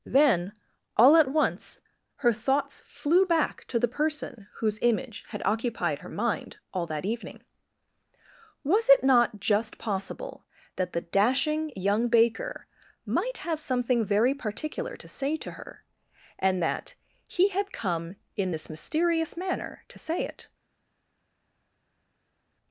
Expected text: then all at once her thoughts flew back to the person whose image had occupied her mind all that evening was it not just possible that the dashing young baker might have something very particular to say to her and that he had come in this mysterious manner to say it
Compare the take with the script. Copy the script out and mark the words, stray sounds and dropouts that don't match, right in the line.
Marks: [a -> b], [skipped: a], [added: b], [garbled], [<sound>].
then all at once her thoughts flew back to the person whose image had occupied her mind all that evening was it not just possible that the dashing young baker might have something very particular to say to her and that he had come in this mysterious manner to say it